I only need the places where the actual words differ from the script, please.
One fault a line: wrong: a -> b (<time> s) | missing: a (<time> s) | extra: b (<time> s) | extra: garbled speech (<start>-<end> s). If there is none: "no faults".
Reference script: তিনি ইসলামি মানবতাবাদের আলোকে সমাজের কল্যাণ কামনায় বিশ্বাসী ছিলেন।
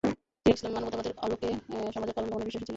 no faults